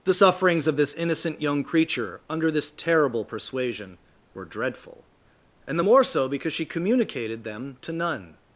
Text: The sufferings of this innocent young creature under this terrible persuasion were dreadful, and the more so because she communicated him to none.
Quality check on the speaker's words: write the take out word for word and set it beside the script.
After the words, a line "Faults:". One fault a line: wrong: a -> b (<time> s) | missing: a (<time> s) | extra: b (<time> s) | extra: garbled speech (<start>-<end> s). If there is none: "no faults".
The sufferings of this innocent young creature under this terrible persuasion were dreadful, and the more so because she communicated them to none.
Faults:
wrong: him -> them (7.4 s)